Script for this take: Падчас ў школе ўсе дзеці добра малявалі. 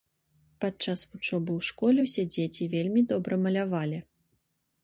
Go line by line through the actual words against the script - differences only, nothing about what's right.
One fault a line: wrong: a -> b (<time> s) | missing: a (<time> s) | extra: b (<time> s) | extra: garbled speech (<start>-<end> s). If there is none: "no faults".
extra: вучобы (1.1 s)
extra: вельмі (2.7 s)